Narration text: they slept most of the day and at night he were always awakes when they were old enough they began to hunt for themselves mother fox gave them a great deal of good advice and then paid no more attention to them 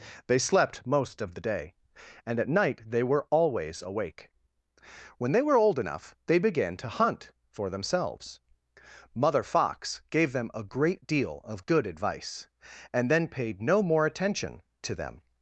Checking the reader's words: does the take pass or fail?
fail